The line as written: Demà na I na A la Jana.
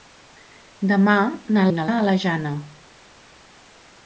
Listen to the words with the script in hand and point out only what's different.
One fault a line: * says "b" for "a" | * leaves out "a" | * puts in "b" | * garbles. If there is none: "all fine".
all fine